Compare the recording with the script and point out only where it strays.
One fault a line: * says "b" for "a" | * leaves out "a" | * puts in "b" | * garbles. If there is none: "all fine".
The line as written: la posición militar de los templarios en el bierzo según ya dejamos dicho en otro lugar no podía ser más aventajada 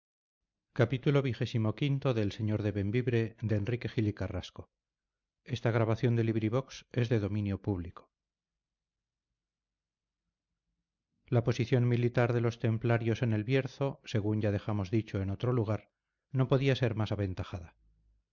all fine